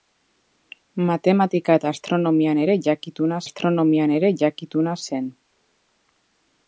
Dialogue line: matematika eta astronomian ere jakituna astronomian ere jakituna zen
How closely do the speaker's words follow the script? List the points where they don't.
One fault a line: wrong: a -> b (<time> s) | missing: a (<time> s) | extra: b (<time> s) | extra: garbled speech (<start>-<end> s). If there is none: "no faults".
no faults